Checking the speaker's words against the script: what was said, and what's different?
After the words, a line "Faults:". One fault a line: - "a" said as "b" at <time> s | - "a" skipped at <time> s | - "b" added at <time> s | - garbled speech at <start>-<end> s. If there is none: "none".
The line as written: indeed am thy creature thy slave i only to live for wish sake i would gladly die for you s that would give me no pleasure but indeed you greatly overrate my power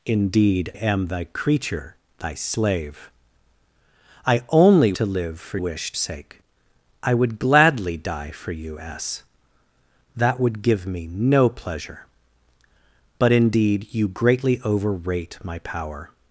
indeed am thy creature thy slave i only to live for wish sake i would gladly die for you s that would give me no pleasure but indeed you greatly overrate my power
Faults:
none